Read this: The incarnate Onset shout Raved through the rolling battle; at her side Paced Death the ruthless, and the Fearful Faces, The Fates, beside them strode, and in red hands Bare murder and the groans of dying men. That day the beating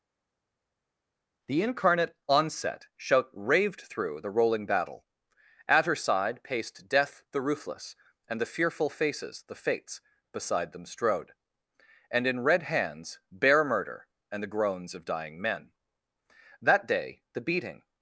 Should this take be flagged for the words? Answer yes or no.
no